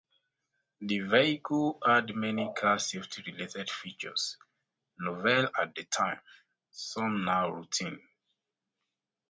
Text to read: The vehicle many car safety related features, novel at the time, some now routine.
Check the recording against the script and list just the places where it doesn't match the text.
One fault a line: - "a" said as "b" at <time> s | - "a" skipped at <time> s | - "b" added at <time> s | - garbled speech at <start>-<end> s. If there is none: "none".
- "had" added at 1.9 s